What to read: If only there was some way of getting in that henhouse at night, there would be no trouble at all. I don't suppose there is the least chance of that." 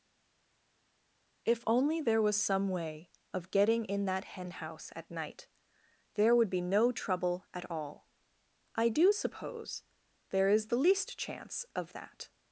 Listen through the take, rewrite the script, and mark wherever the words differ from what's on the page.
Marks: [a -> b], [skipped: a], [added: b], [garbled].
If only there was some way of getting in that henhouse at night, there would be no trouble at all. I [don't -> do] suppose there is the least chance of that."